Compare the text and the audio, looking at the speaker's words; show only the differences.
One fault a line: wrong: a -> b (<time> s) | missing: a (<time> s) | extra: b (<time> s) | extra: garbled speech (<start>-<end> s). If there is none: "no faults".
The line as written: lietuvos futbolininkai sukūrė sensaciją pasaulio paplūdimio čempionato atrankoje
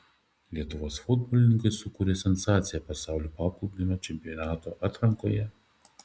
no faults